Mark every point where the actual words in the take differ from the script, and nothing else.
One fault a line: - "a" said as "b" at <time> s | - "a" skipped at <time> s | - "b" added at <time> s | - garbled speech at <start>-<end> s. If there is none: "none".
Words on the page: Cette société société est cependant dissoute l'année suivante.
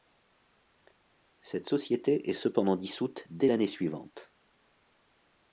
- "société" skipped at 2.3 s
- "dès" added at 3.3 s